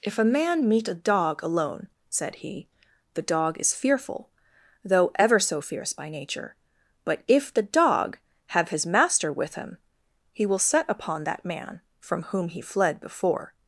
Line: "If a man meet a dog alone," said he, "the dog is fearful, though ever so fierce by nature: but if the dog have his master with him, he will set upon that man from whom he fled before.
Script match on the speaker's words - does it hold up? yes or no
yes